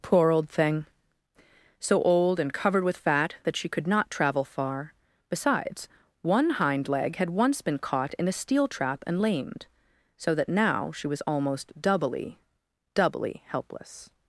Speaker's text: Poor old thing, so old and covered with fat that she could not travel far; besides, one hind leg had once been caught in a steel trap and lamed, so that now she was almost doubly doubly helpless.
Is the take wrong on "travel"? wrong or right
right